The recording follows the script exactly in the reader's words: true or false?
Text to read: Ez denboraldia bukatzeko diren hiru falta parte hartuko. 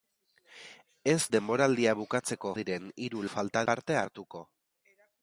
true